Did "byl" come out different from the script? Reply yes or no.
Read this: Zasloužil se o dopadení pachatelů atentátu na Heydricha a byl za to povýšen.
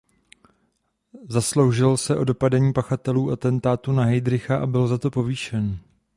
no